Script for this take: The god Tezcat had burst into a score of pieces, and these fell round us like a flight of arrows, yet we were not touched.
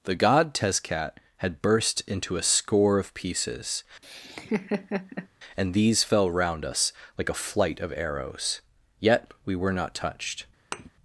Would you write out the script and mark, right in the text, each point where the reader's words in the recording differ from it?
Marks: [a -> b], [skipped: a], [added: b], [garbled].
The god Tezcat had burst into a score of pieces, and these fell round us like a flight of arrows, yet we were not touched.